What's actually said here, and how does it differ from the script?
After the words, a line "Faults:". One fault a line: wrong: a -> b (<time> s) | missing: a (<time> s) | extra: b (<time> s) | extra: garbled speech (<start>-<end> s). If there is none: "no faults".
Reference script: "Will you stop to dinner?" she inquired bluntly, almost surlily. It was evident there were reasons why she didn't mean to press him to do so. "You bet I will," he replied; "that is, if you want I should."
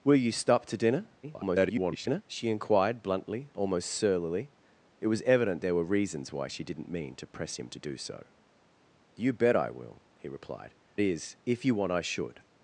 "Will you stop to dinner?" [garbled] she inquired bluntly, almost surlily. It was evident there were reasons why she didn't mean to press him to do so. "You bet I will," he replied; "is, if you want I should."
Faults:
extra: garbled speech (1.2-2.2 s)
missing: that (10.7 s)